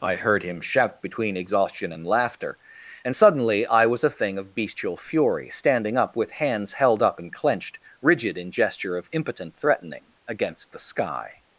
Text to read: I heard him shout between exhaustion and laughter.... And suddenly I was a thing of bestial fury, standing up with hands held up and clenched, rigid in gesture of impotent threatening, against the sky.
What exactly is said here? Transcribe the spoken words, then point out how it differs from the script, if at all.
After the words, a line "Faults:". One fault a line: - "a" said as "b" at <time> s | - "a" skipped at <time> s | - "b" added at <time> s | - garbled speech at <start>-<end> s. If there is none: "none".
I heard him shout between exhaustion and laughter.... And suddenly I was a thing of bestial fury, standing up with hands held up and clenched, rigid in gesture of impotent threatening, against the sky.
Faults:
none